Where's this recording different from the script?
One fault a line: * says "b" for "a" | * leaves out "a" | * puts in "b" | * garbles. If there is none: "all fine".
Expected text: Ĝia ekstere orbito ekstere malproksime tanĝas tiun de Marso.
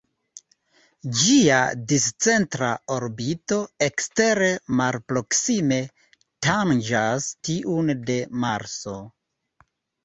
* says "discentra" for "ekstere"